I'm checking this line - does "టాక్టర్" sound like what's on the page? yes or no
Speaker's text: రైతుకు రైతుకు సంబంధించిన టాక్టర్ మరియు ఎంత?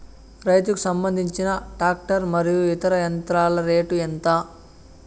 yes